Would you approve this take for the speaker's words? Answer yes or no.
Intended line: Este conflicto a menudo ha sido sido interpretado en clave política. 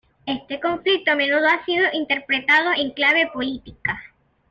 no